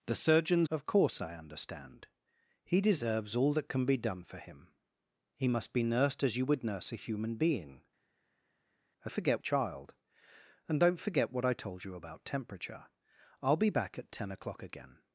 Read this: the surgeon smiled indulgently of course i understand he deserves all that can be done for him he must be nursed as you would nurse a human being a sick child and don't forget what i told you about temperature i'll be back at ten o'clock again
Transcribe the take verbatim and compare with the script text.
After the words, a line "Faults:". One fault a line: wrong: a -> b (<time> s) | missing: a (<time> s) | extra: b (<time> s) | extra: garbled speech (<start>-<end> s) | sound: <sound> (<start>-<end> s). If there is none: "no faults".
the surgeon of course i understand he deserves all that can be done for him he must be nursed as you would nurse a human being a forget child and don't forget what i told you about temperature i'll be back at ten o'clock again
Faults:
missing: smiled indulgently (0.7 s)
wrong: sick -> forget (9.1 s)